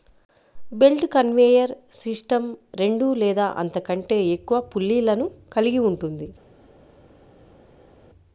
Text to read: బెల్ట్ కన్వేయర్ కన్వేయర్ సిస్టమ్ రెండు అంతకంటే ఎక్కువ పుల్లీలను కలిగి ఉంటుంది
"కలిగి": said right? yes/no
yes